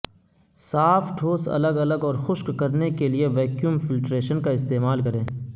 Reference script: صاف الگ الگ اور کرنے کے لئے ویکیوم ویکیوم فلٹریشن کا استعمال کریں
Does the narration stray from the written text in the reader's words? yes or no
yes